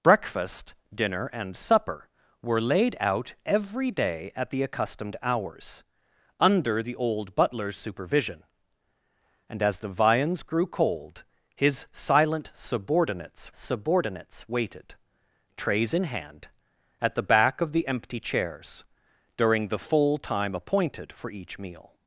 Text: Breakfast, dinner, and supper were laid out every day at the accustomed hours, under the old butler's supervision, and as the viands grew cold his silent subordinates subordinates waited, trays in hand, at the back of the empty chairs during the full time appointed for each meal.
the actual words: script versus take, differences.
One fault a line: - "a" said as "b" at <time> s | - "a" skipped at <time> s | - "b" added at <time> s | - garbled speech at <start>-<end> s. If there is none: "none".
none